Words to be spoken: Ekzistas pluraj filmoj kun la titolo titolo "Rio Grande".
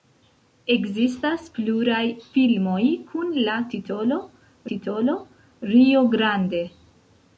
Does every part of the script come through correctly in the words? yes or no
yes